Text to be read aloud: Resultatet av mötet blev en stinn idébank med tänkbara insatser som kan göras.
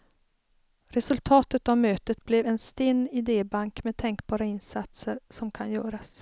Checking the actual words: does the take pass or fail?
pass